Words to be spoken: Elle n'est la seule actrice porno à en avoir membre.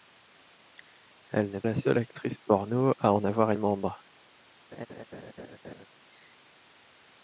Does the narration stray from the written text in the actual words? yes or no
no